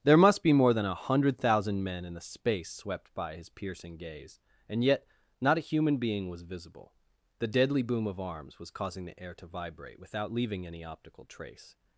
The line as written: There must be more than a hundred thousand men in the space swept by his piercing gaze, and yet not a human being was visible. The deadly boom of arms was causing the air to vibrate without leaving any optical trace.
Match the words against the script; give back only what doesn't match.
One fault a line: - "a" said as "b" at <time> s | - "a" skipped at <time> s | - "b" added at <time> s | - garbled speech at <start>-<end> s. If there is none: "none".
none